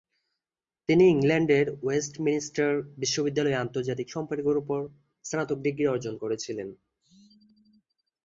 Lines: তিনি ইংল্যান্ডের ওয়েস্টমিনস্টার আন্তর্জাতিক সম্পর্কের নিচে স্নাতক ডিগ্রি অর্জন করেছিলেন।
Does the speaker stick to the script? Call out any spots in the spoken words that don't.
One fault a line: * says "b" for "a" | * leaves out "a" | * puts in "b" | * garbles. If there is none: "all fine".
* puts in "বিশ্ববিদ্যালয়ে"
* says "উপর" for "নিচে"